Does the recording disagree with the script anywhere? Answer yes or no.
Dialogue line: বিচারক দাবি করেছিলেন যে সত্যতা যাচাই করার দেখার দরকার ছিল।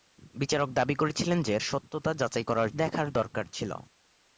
no